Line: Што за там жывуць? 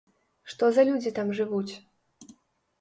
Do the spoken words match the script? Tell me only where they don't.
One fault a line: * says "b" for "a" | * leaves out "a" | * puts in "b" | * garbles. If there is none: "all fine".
* puts in "людзі"